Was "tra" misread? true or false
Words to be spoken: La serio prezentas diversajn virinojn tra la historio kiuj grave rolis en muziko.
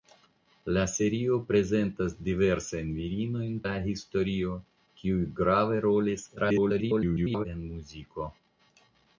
true